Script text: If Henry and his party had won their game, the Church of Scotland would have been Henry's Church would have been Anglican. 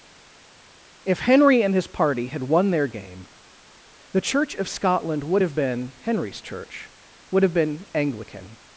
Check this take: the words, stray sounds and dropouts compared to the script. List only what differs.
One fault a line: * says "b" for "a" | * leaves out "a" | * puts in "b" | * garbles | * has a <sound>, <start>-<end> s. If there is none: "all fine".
all fine